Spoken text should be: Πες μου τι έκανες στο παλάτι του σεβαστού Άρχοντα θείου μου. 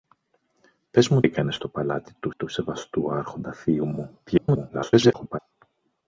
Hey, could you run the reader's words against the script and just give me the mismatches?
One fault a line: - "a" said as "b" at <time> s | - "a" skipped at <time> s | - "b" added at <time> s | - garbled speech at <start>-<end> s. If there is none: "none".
- "τι" skipped at 1.2 s
- "του" added at 2.4 s
- garbled speech at 4.3-5.4 s